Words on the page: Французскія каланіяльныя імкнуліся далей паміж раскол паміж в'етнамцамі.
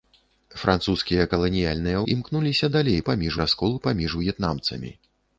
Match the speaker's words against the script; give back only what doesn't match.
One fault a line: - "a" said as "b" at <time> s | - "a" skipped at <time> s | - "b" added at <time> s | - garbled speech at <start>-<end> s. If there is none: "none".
none